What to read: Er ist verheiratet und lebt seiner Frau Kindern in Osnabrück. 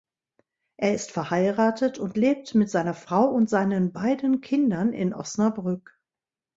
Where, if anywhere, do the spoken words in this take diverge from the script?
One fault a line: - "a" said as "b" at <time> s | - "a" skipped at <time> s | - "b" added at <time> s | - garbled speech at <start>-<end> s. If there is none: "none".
- "mit" added at 2.5 s
- "und seinen beiden" added at 3.2 s